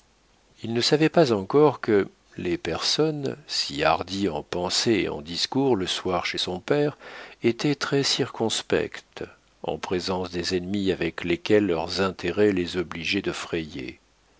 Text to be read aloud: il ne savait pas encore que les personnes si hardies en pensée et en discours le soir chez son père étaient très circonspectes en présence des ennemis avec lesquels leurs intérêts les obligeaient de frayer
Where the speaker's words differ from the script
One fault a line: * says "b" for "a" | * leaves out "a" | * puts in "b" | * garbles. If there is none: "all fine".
all fine